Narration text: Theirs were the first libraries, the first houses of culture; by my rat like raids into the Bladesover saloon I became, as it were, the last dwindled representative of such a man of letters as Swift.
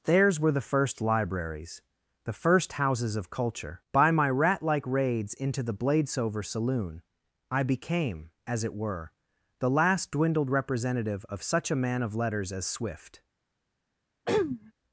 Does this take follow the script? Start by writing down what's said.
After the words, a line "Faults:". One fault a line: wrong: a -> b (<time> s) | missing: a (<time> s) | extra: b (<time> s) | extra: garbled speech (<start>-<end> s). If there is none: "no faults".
Theirs were the first libraries, the first houses of culture; by my rat like raids into the Bladesover saloon I became, as it were, the last dwindled representative of such a man of letters as Swift.
Faults:
no faults